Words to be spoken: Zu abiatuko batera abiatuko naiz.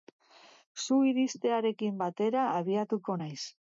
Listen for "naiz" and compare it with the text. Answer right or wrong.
right